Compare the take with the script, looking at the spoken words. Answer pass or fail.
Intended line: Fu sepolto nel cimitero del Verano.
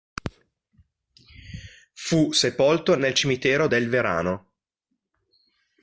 pass